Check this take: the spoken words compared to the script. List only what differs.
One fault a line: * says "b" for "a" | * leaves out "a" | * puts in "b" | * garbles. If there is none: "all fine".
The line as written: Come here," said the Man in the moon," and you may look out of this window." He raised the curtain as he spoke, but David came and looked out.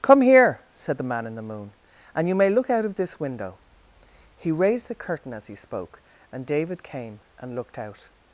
* says "and" for "but"